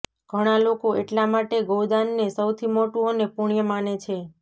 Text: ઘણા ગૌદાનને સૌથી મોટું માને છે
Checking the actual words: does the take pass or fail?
fail